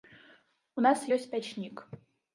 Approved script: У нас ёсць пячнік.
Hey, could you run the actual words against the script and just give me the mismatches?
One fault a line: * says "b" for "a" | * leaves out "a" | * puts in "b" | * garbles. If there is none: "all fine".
all fine